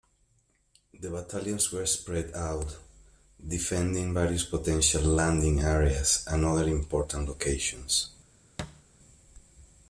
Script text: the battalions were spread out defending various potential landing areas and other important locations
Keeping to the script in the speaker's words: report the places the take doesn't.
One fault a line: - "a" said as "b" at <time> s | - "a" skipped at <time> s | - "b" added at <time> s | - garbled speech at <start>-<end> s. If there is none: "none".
none